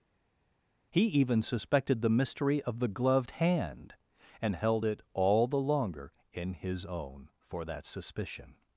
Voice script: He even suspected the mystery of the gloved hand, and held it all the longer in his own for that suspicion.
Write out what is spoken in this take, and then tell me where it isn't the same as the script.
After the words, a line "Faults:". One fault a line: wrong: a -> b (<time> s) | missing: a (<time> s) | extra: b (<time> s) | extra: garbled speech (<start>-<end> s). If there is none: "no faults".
He even suspected the mystery of the gloved hand, and held it all the longer in his own for that suspicion.
Faults:
no faults